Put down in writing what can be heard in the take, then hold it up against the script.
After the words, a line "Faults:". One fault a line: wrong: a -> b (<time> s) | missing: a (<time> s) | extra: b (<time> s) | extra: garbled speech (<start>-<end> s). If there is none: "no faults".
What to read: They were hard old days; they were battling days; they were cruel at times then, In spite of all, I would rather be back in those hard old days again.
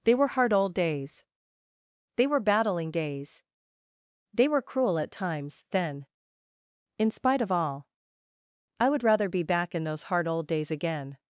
They were hard old days; they were battling days; they were cruel at times then, In spite of all, I would rather be back in those hard old days again.
Faults:
no faults